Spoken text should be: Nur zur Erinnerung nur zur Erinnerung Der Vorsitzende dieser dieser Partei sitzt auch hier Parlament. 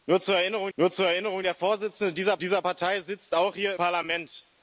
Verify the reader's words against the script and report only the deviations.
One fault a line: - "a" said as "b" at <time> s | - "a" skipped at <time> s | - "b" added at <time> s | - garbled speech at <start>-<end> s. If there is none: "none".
none